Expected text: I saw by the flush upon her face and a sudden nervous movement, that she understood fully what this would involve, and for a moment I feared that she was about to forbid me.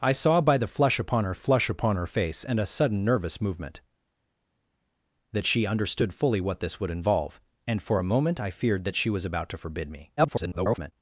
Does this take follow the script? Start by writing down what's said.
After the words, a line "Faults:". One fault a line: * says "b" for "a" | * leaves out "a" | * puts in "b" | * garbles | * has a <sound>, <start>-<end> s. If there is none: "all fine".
I saw by the flush upon her flush upon her face and a sudden nervous movement, that she understood fully what this would involve, and for a moment I feared that she was about to forbid me. [garbled]
Faults:
* puts in "flush upon her"
* garbles